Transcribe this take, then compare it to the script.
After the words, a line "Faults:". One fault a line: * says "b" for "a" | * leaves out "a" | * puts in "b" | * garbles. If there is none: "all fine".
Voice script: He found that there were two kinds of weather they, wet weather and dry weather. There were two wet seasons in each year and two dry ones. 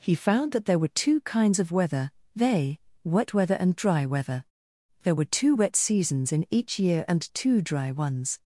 He found that there were two kinds of weather they, wet weather and dry weather. There were two wet seasons in each year and two dry ones.
Faults:
all fine